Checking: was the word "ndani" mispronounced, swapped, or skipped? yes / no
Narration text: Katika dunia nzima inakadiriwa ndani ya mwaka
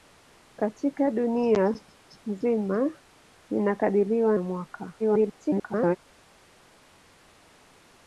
yes